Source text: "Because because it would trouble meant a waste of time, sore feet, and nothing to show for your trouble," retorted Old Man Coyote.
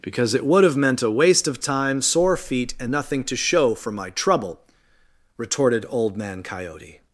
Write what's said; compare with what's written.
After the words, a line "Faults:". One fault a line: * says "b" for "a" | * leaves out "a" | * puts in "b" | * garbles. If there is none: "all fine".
"Because it would have meant a waste of time, sore feet, and nothing to show for my trouble," retorted Old Man Coyote.
Faults:
* leaves out "because"
* says "have" for "trouble"
* says "my" for "your"